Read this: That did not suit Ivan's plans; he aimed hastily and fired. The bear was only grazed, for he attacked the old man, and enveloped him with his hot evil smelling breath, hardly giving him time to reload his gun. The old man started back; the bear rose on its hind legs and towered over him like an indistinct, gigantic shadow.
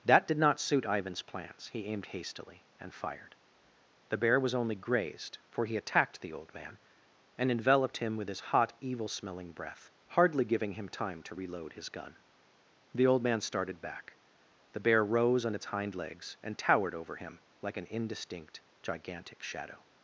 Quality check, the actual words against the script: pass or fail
pass